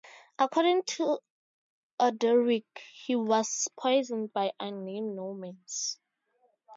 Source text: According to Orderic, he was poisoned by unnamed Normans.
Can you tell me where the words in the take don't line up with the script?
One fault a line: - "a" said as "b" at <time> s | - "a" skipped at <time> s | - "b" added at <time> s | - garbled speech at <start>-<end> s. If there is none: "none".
none